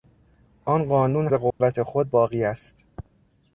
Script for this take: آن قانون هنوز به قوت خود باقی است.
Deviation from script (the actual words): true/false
true